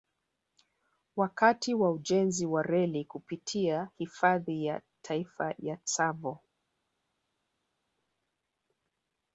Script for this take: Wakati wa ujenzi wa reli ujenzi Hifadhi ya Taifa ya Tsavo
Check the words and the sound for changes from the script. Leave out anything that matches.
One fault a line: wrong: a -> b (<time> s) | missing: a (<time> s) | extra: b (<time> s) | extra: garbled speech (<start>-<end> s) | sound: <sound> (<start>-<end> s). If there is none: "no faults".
wrong: ujenzi -> kupitia (3.0 s)